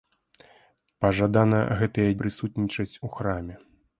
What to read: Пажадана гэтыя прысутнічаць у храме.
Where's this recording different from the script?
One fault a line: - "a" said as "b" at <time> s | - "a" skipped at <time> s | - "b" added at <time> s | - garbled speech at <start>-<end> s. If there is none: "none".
none